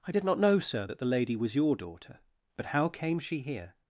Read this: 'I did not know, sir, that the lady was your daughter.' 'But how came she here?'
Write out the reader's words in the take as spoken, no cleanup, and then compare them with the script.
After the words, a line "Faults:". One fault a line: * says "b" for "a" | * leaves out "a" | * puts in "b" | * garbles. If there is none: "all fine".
'I did not know, sir, that the lady was your daughter.' 'But how came she here?'
Faults:
all fine